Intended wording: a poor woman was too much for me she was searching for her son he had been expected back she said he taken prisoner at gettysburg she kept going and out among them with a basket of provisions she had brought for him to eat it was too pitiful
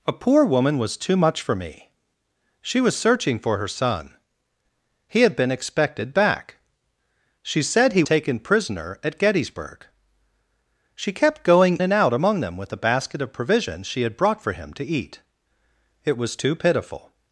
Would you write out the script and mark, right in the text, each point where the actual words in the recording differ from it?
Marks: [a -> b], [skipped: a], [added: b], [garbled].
a poor woman was too much for me she was searching for her son he had been expected back she said he taken prisoner at gettysburg she kept going and out among them with a basket of provisions she had brought for him to eat it was too pitiful